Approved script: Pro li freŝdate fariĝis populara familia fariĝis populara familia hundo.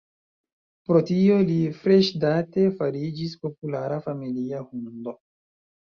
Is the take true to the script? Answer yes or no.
no